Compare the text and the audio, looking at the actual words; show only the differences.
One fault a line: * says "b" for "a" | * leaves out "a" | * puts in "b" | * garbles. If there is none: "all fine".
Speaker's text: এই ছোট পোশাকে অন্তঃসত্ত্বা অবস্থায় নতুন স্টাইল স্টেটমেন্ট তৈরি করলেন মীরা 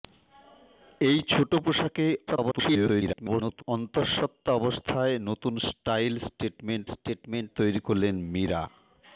* garbles
* puts in "স্টেটমেন্ট"